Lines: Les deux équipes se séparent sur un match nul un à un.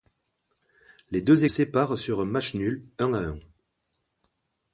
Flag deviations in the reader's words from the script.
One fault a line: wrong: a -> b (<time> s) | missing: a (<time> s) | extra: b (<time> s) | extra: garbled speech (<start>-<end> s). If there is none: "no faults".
missing: équipes se (1.4 s)